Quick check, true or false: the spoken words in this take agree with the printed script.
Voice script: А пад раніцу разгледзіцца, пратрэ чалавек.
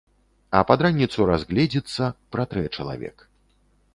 true